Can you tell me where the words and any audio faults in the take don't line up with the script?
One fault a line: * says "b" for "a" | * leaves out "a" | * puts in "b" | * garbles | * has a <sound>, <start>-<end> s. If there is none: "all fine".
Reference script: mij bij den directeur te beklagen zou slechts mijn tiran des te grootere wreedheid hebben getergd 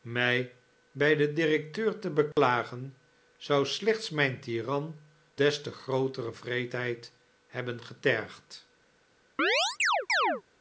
* has a dropout, 2.3-2.4 s
* has a chirp, 9.4-10.4 s